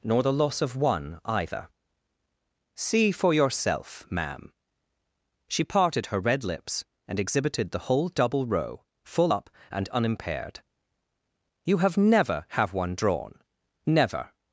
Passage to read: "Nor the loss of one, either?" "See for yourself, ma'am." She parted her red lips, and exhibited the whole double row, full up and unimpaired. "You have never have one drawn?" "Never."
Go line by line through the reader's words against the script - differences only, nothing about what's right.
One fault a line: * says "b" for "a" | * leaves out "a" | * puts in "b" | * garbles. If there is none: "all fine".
all fine